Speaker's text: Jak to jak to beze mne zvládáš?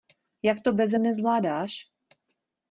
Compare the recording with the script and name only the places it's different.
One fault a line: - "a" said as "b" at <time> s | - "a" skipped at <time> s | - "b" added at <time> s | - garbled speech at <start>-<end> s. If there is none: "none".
- "jak to" skipped at 0.7 s